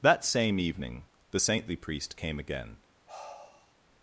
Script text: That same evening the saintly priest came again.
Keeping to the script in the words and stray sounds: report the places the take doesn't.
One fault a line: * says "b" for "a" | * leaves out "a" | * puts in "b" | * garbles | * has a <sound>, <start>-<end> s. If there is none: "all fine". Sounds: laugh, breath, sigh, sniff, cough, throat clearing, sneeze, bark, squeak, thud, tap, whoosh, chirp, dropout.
* has a sigh, 3.1-3.7 s